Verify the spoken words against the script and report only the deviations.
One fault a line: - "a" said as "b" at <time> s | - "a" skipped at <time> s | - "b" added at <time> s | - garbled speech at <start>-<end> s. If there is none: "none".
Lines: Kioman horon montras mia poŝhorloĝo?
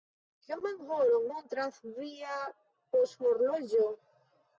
- "mia" said as "via" at 2.0 s